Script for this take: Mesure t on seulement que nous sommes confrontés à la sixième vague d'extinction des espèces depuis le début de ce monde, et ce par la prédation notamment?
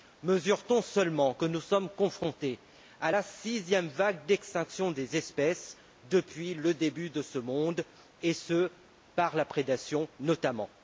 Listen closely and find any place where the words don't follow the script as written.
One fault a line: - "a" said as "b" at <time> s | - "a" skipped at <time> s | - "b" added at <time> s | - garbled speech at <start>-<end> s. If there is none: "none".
none